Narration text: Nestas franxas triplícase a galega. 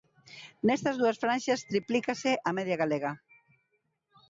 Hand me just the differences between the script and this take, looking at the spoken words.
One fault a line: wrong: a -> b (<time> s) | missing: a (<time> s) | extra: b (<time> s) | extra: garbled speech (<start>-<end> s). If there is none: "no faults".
extra: dúas (1.0 s)
extra: media (2.6 s)